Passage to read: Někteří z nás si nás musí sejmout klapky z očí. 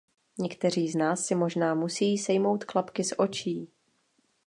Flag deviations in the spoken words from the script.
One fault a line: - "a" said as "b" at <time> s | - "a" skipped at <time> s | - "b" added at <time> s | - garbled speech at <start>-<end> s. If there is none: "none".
- "nás" said as "možná" at 1.3 s